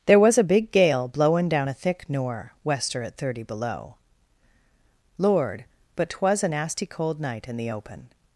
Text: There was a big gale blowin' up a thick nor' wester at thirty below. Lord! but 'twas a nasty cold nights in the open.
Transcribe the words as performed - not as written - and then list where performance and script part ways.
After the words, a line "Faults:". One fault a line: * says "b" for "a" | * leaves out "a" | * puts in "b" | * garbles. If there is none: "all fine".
There was a big gale blowin' down a thick nor' wester at thirty below. Lord! but 'twas a nasty cold night in the open.
Faults:
* says "down" for "up"
* says "night" for "nights"